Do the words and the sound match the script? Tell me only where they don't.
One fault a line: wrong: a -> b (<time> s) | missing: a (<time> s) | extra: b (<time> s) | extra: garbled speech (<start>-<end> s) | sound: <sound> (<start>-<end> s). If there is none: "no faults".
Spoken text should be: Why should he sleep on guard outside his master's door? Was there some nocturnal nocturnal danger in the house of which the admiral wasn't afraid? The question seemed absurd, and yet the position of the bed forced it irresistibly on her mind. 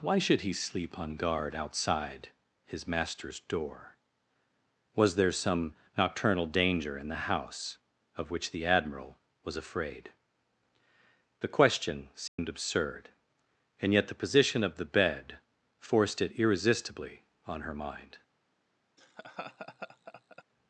missing: nocturnal (6.5 s)
wrong: wasn't -> was (9.4 s)
sound: dropout (12.3-12.4 s)
sound: laugh (19.0-20.4 s)